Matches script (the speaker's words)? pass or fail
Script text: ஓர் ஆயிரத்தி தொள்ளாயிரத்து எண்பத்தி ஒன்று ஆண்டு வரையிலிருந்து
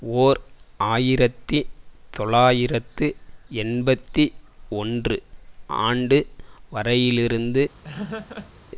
pass